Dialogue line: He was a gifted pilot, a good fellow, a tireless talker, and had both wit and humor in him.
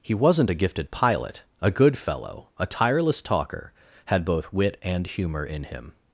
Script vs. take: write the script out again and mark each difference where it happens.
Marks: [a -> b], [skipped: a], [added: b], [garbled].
He [was -> wasn't] a gifted pilot, a good fellow, a tireless talker, [skipped: and] had both wit and humor in him.